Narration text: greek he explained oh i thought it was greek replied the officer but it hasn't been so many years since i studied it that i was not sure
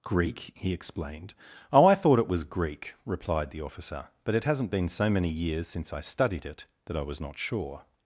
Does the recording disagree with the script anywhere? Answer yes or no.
no